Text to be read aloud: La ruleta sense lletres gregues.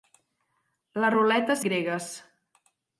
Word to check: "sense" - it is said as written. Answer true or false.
false